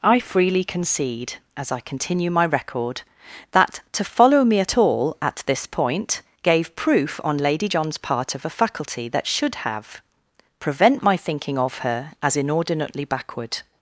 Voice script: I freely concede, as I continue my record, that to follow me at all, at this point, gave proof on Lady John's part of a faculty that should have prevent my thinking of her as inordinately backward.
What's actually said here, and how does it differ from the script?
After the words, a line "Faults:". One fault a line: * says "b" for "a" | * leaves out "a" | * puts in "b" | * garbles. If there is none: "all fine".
I freely concede, as I continue my record, that to follow me at all, at this point, gave proof on Lady John's part of a faculty that should have prevent my thinking of her as inordinately backward.
Faults:
all fine